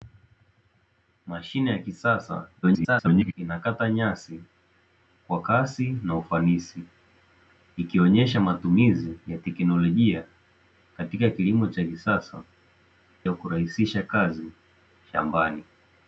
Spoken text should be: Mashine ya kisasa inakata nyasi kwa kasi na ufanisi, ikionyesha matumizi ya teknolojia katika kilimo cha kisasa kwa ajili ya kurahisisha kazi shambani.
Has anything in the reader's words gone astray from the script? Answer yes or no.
yes